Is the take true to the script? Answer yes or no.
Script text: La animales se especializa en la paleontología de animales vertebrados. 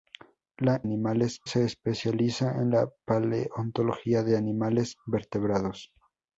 yes